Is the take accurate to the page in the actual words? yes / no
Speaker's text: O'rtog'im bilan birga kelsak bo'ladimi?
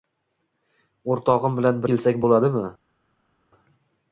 no